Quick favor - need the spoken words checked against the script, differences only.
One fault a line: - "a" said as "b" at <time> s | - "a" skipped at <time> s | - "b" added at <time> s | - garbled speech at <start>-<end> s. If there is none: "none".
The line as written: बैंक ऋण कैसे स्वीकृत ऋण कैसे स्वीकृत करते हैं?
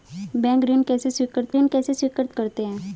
none